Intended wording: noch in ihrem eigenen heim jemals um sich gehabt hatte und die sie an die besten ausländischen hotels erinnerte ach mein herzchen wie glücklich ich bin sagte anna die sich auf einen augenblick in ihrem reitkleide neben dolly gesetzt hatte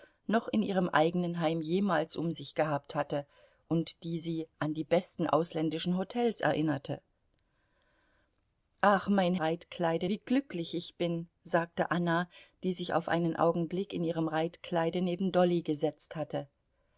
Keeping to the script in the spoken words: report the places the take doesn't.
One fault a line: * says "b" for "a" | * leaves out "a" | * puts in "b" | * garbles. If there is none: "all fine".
* says "reitkleide" for "herzchen"